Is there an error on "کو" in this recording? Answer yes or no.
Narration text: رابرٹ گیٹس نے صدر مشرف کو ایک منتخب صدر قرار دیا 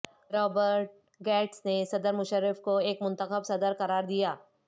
no